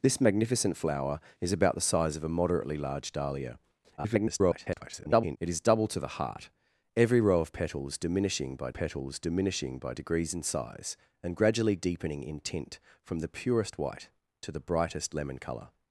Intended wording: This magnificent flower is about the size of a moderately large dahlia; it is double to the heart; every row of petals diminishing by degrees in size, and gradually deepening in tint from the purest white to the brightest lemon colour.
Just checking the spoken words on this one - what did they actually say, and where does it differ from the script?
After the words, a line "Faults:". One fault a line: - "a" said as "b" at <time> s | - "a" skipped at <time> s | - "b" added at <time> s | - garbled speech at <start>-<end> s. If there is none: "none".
This magnificent flower is about the size of a moderately large dahlia; [garbled] it is double to the heart; every row of petals diminishing by petals diminishing by degrees in size, and gradually deepening in tint from the purest white to the brightest lemon colour.
Faults:
- garbled speech at 4.0-5.4 s
- "petals diminishing by" added at 8.7 s